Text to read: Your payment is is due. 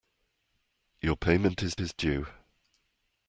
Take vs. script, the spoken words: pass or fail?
pass